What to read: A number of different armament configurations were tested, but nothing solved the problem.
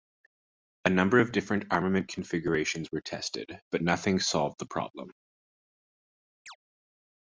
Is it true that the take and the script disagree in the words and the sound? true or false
true